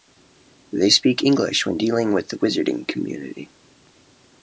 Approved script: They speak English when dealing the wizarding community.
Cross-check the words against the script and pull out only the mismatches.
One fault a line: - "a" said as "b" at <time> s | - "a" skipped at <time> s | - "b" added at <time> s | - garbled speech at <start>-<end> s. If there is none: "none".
- "with" added at 2.1 s